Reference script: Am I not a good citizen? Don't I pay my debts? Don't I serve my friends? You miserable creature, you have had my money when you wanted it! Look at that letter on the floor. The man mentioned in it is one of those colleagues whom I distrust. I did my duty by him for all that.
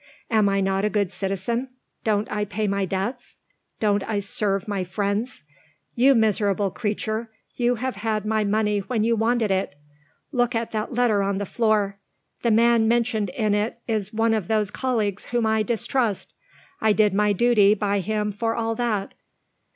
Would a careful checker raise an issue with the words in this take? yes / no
no